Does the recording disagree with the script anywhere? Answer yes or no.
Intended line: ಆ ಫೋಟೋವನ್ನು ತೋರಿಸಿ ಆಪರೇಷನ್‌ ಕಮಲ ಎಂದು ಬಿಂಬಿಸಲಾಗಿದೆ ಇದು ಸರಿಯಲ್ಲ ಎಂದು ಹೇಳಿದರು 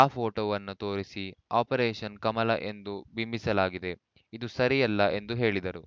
no